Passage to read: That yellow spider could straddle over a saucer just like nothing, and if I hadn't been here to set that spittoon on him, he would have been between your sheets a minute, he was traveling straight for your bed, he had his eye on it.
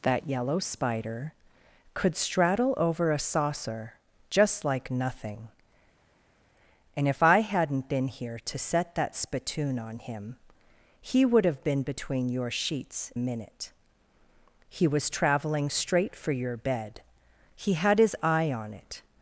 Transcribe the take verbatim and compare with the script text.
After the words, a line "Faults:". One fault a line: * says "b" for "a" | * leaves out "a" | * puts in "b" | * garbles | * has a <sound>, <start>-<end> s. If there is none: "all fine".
That yellow spider could straddle over a saucer just like nothing, and if I hadn't been here to set that spittoon on him, he would have been between your sheets a minute, he was traveling straight for your bed, he had his eye on it.
Faults:
all fine